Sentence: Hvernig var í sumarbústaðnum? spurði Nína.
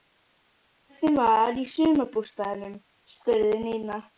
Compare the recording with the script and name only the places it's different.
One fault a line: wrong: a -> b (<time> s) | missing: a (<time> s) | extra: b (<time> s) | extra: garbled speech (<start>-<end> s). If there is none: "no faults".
no faults